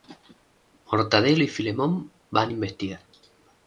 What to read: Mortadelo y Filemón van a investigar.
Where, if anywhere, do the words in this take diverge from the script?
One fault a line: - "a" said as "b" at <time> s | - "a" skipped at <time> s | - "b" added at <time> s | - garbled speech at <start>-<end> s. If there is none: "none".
none